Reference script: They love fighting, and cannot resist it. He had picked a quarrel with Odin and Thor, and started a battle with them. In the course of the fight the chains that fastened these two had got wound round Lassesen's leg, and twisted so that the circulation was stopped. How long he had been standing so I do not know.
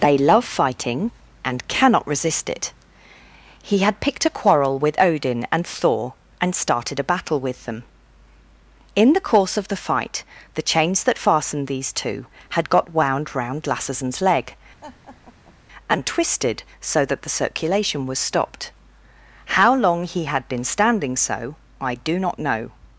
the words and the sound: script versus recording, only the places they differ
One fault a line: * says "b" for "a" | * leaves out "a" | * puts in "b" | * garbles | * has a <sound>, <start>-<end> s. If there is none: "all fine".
* has a laugh, 14.8-15.6 s